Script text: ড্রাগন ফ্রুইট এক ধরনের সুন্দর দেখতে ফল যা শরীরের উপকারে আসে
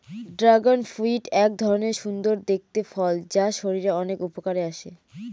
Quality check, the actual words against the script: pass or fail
fail